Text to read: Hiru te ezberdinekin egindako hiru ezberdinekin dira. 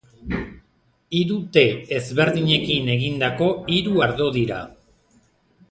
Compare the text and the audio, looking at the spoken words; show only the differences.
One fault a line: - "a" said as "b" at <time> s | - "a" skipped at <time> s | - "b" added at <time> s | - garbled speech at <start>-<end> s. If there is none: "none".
- "ezberdinekin" said as "ardo" at 4.1 s